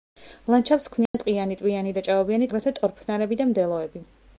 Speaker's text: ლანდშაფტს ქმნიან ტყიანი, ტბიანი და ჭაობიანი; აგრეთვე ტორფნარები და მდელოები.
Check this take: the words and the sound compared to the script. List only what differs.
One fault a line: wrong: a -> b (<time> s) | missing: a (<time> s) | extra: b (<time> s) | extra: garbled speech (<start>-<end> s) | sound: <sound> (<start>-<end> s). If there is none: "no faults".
sound: dropout (1.1-1.1 s)